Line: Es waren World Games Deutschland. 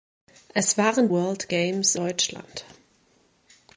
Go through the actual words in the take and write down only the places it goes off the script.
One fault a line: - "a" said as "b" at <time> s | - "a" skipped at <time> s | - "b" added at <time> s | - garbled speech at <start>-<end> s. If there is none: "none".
none